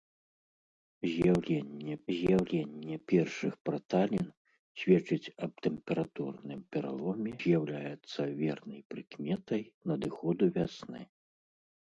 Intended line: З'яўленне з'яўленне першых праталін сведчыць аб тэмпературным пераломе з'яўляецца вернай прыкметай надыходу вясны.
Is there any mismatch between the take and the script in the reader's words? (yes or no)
no